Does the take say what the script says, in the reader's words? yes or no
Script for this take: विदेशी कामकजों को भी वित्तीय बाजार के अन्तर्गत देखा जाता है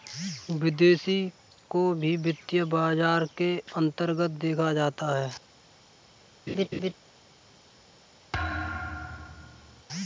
no